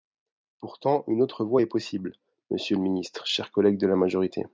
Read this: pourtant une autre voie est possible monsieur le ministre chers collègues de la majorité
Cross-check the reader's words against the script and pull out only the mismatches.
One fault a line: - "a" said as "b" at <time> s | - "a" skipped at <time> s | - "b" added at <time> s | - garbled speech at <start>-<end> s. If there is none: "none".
none